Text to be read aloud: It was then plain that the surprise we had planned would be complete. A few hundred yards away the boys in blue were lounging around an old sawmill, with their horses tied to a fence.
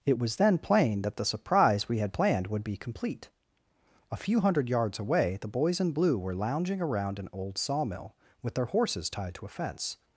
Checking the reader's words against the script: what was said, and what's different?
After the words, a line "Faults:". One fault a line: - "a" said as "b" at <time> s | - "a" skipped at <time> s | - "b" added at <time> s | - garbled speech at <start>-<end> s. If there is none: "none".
It was then plain that the surprise we had planned would be complete. A few hundred yards away the boys in blue were lounging around an old sawmill, with their horses tied to a fence.
Faults:
none